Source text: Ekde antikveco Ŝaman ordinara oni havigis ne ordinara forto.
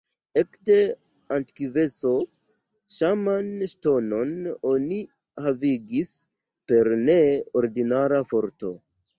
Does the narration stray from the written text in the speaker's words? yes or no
yes